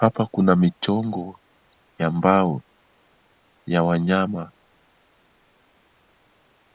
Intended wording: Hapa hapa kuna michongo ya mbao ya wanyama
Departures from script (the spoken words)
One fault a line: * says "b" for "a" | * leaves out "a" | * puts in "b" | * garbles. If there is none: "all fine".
* leaves out "hapa"